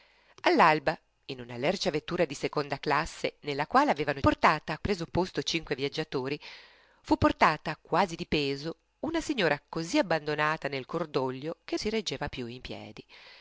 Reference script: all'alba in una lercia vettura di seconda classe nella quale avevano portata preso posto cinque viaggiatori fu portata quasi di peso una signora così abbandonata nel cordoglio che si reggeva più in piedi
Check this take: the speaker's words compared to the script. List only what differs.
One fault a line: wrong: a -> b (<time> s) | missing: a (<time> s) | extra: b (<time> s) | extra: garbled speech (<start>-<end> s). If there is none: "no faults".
no faults